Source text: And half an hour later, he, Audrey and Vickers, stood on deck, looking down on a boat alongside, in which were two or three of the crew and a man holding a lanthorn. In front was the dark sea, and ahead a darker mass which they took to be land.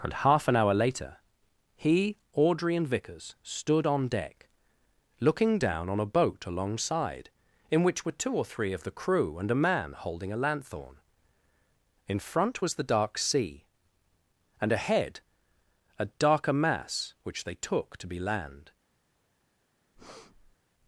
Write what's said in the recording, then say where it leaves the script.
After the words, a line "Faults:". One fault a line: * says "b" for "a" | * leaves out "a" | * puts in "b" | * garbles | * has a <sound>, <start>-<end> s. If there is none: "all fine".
And half an hour later, he, Audrey and Vickers, stood on deck, looking down on a boat alongside, in which were two or three of the crew and a man holding a lanthorn. In front was the dark sea, and ahead a darker mass which they took to be land.
Faults:
* has a breath, 20.0-20.6 s